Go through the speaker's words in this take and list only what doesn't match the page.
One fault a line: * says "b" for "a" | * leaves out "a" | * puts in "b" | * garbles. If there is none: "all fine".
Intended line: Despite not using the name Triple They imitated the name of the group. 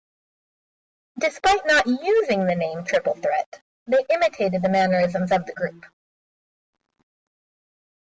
* puts in "Threat"
* says "mannerisms" for "name"